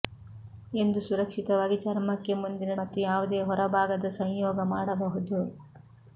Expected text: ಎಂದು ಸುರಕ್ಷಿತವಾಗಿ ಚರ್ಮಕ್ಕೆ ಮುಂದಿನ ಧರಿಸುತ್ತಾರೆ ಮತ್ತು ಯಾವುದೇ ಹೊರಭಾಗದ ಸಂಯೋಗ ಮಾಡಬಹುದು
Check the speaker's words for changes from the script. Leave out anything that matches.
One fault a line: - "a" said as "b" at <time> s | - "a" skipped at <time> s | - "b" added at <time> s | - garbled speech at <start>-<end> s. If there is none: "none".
- "ಧರಿಸುತ್ತಾರೆ" skipped at 2.8 s